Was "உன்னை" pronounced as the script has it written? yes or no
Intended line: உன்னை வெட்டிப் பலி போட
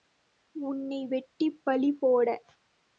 yes